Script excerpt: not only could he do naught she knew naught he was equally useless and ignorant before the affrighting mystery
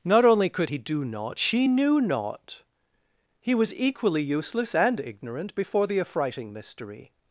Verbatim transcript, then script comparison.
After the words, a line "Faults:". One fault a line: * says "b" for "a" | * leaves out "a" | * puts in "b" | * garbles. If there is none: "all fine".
not only could he do naught she knew naught he was equally useless and ignorant before the affrighting mystery
Faults:
all fine